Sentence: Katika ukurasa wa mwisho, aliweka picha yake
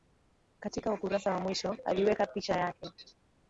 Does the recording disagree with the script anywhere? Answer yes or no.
no